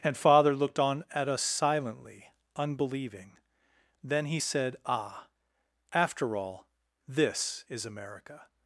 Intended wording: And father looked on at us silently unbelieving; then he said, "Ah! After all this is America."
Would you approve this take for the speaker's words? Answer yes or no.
yes